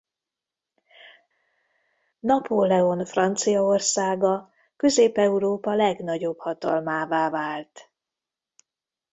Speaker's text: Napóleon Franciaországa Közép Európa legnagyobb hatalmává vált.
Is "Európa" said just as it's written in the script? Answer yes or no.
yes